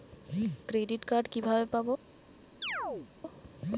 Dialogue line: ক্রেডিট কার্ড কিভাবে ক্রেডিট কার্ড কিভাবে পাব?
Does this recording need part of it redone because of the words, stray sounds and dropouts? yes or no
yes